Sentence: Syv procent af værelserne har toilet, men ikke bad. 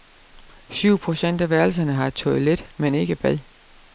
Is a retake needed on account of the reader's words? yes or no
no